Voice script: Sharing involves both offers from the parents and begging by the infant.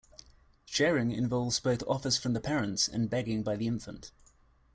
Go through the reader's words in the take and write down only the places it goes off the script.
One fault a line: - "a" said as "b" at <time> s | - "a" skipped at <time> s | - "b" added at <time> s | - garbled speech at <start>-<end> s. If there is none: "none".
none